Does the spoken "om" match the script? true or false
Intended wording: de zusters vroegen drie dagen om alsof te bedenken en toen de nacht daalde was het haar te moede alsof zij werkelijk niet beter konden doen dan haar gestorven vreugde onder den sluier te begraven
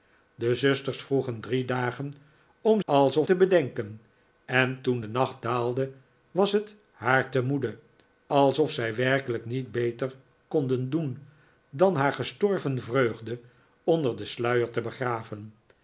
true